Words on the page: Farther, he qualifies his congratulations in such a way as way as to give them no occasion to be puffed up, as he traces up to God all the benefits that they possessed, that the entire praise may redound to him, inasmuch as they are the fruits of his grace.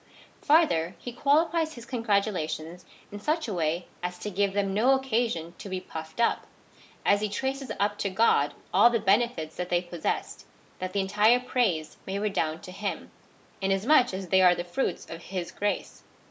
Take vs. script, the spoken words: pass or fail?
fail